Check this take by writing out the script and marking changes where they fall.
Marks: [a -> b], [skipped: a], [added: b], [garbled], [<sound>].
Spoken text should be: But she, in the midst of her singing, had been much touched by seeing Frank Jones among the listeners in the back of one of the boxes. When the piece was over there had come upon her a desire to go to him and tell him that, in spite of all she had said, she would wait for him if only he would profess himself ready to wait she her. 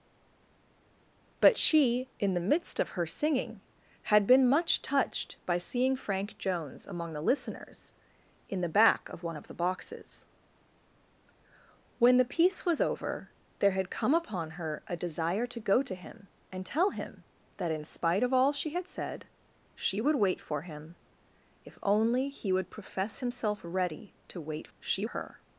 But she, in the midst of her singing, had been much touched by seeing Frank Jones among the listeners in the back of one of the boxes. When the piece was over there had come upon her a desire to go to him and tell him that, in spite of all she had said, she would wait for him if only he would profess himself ready to wait she her.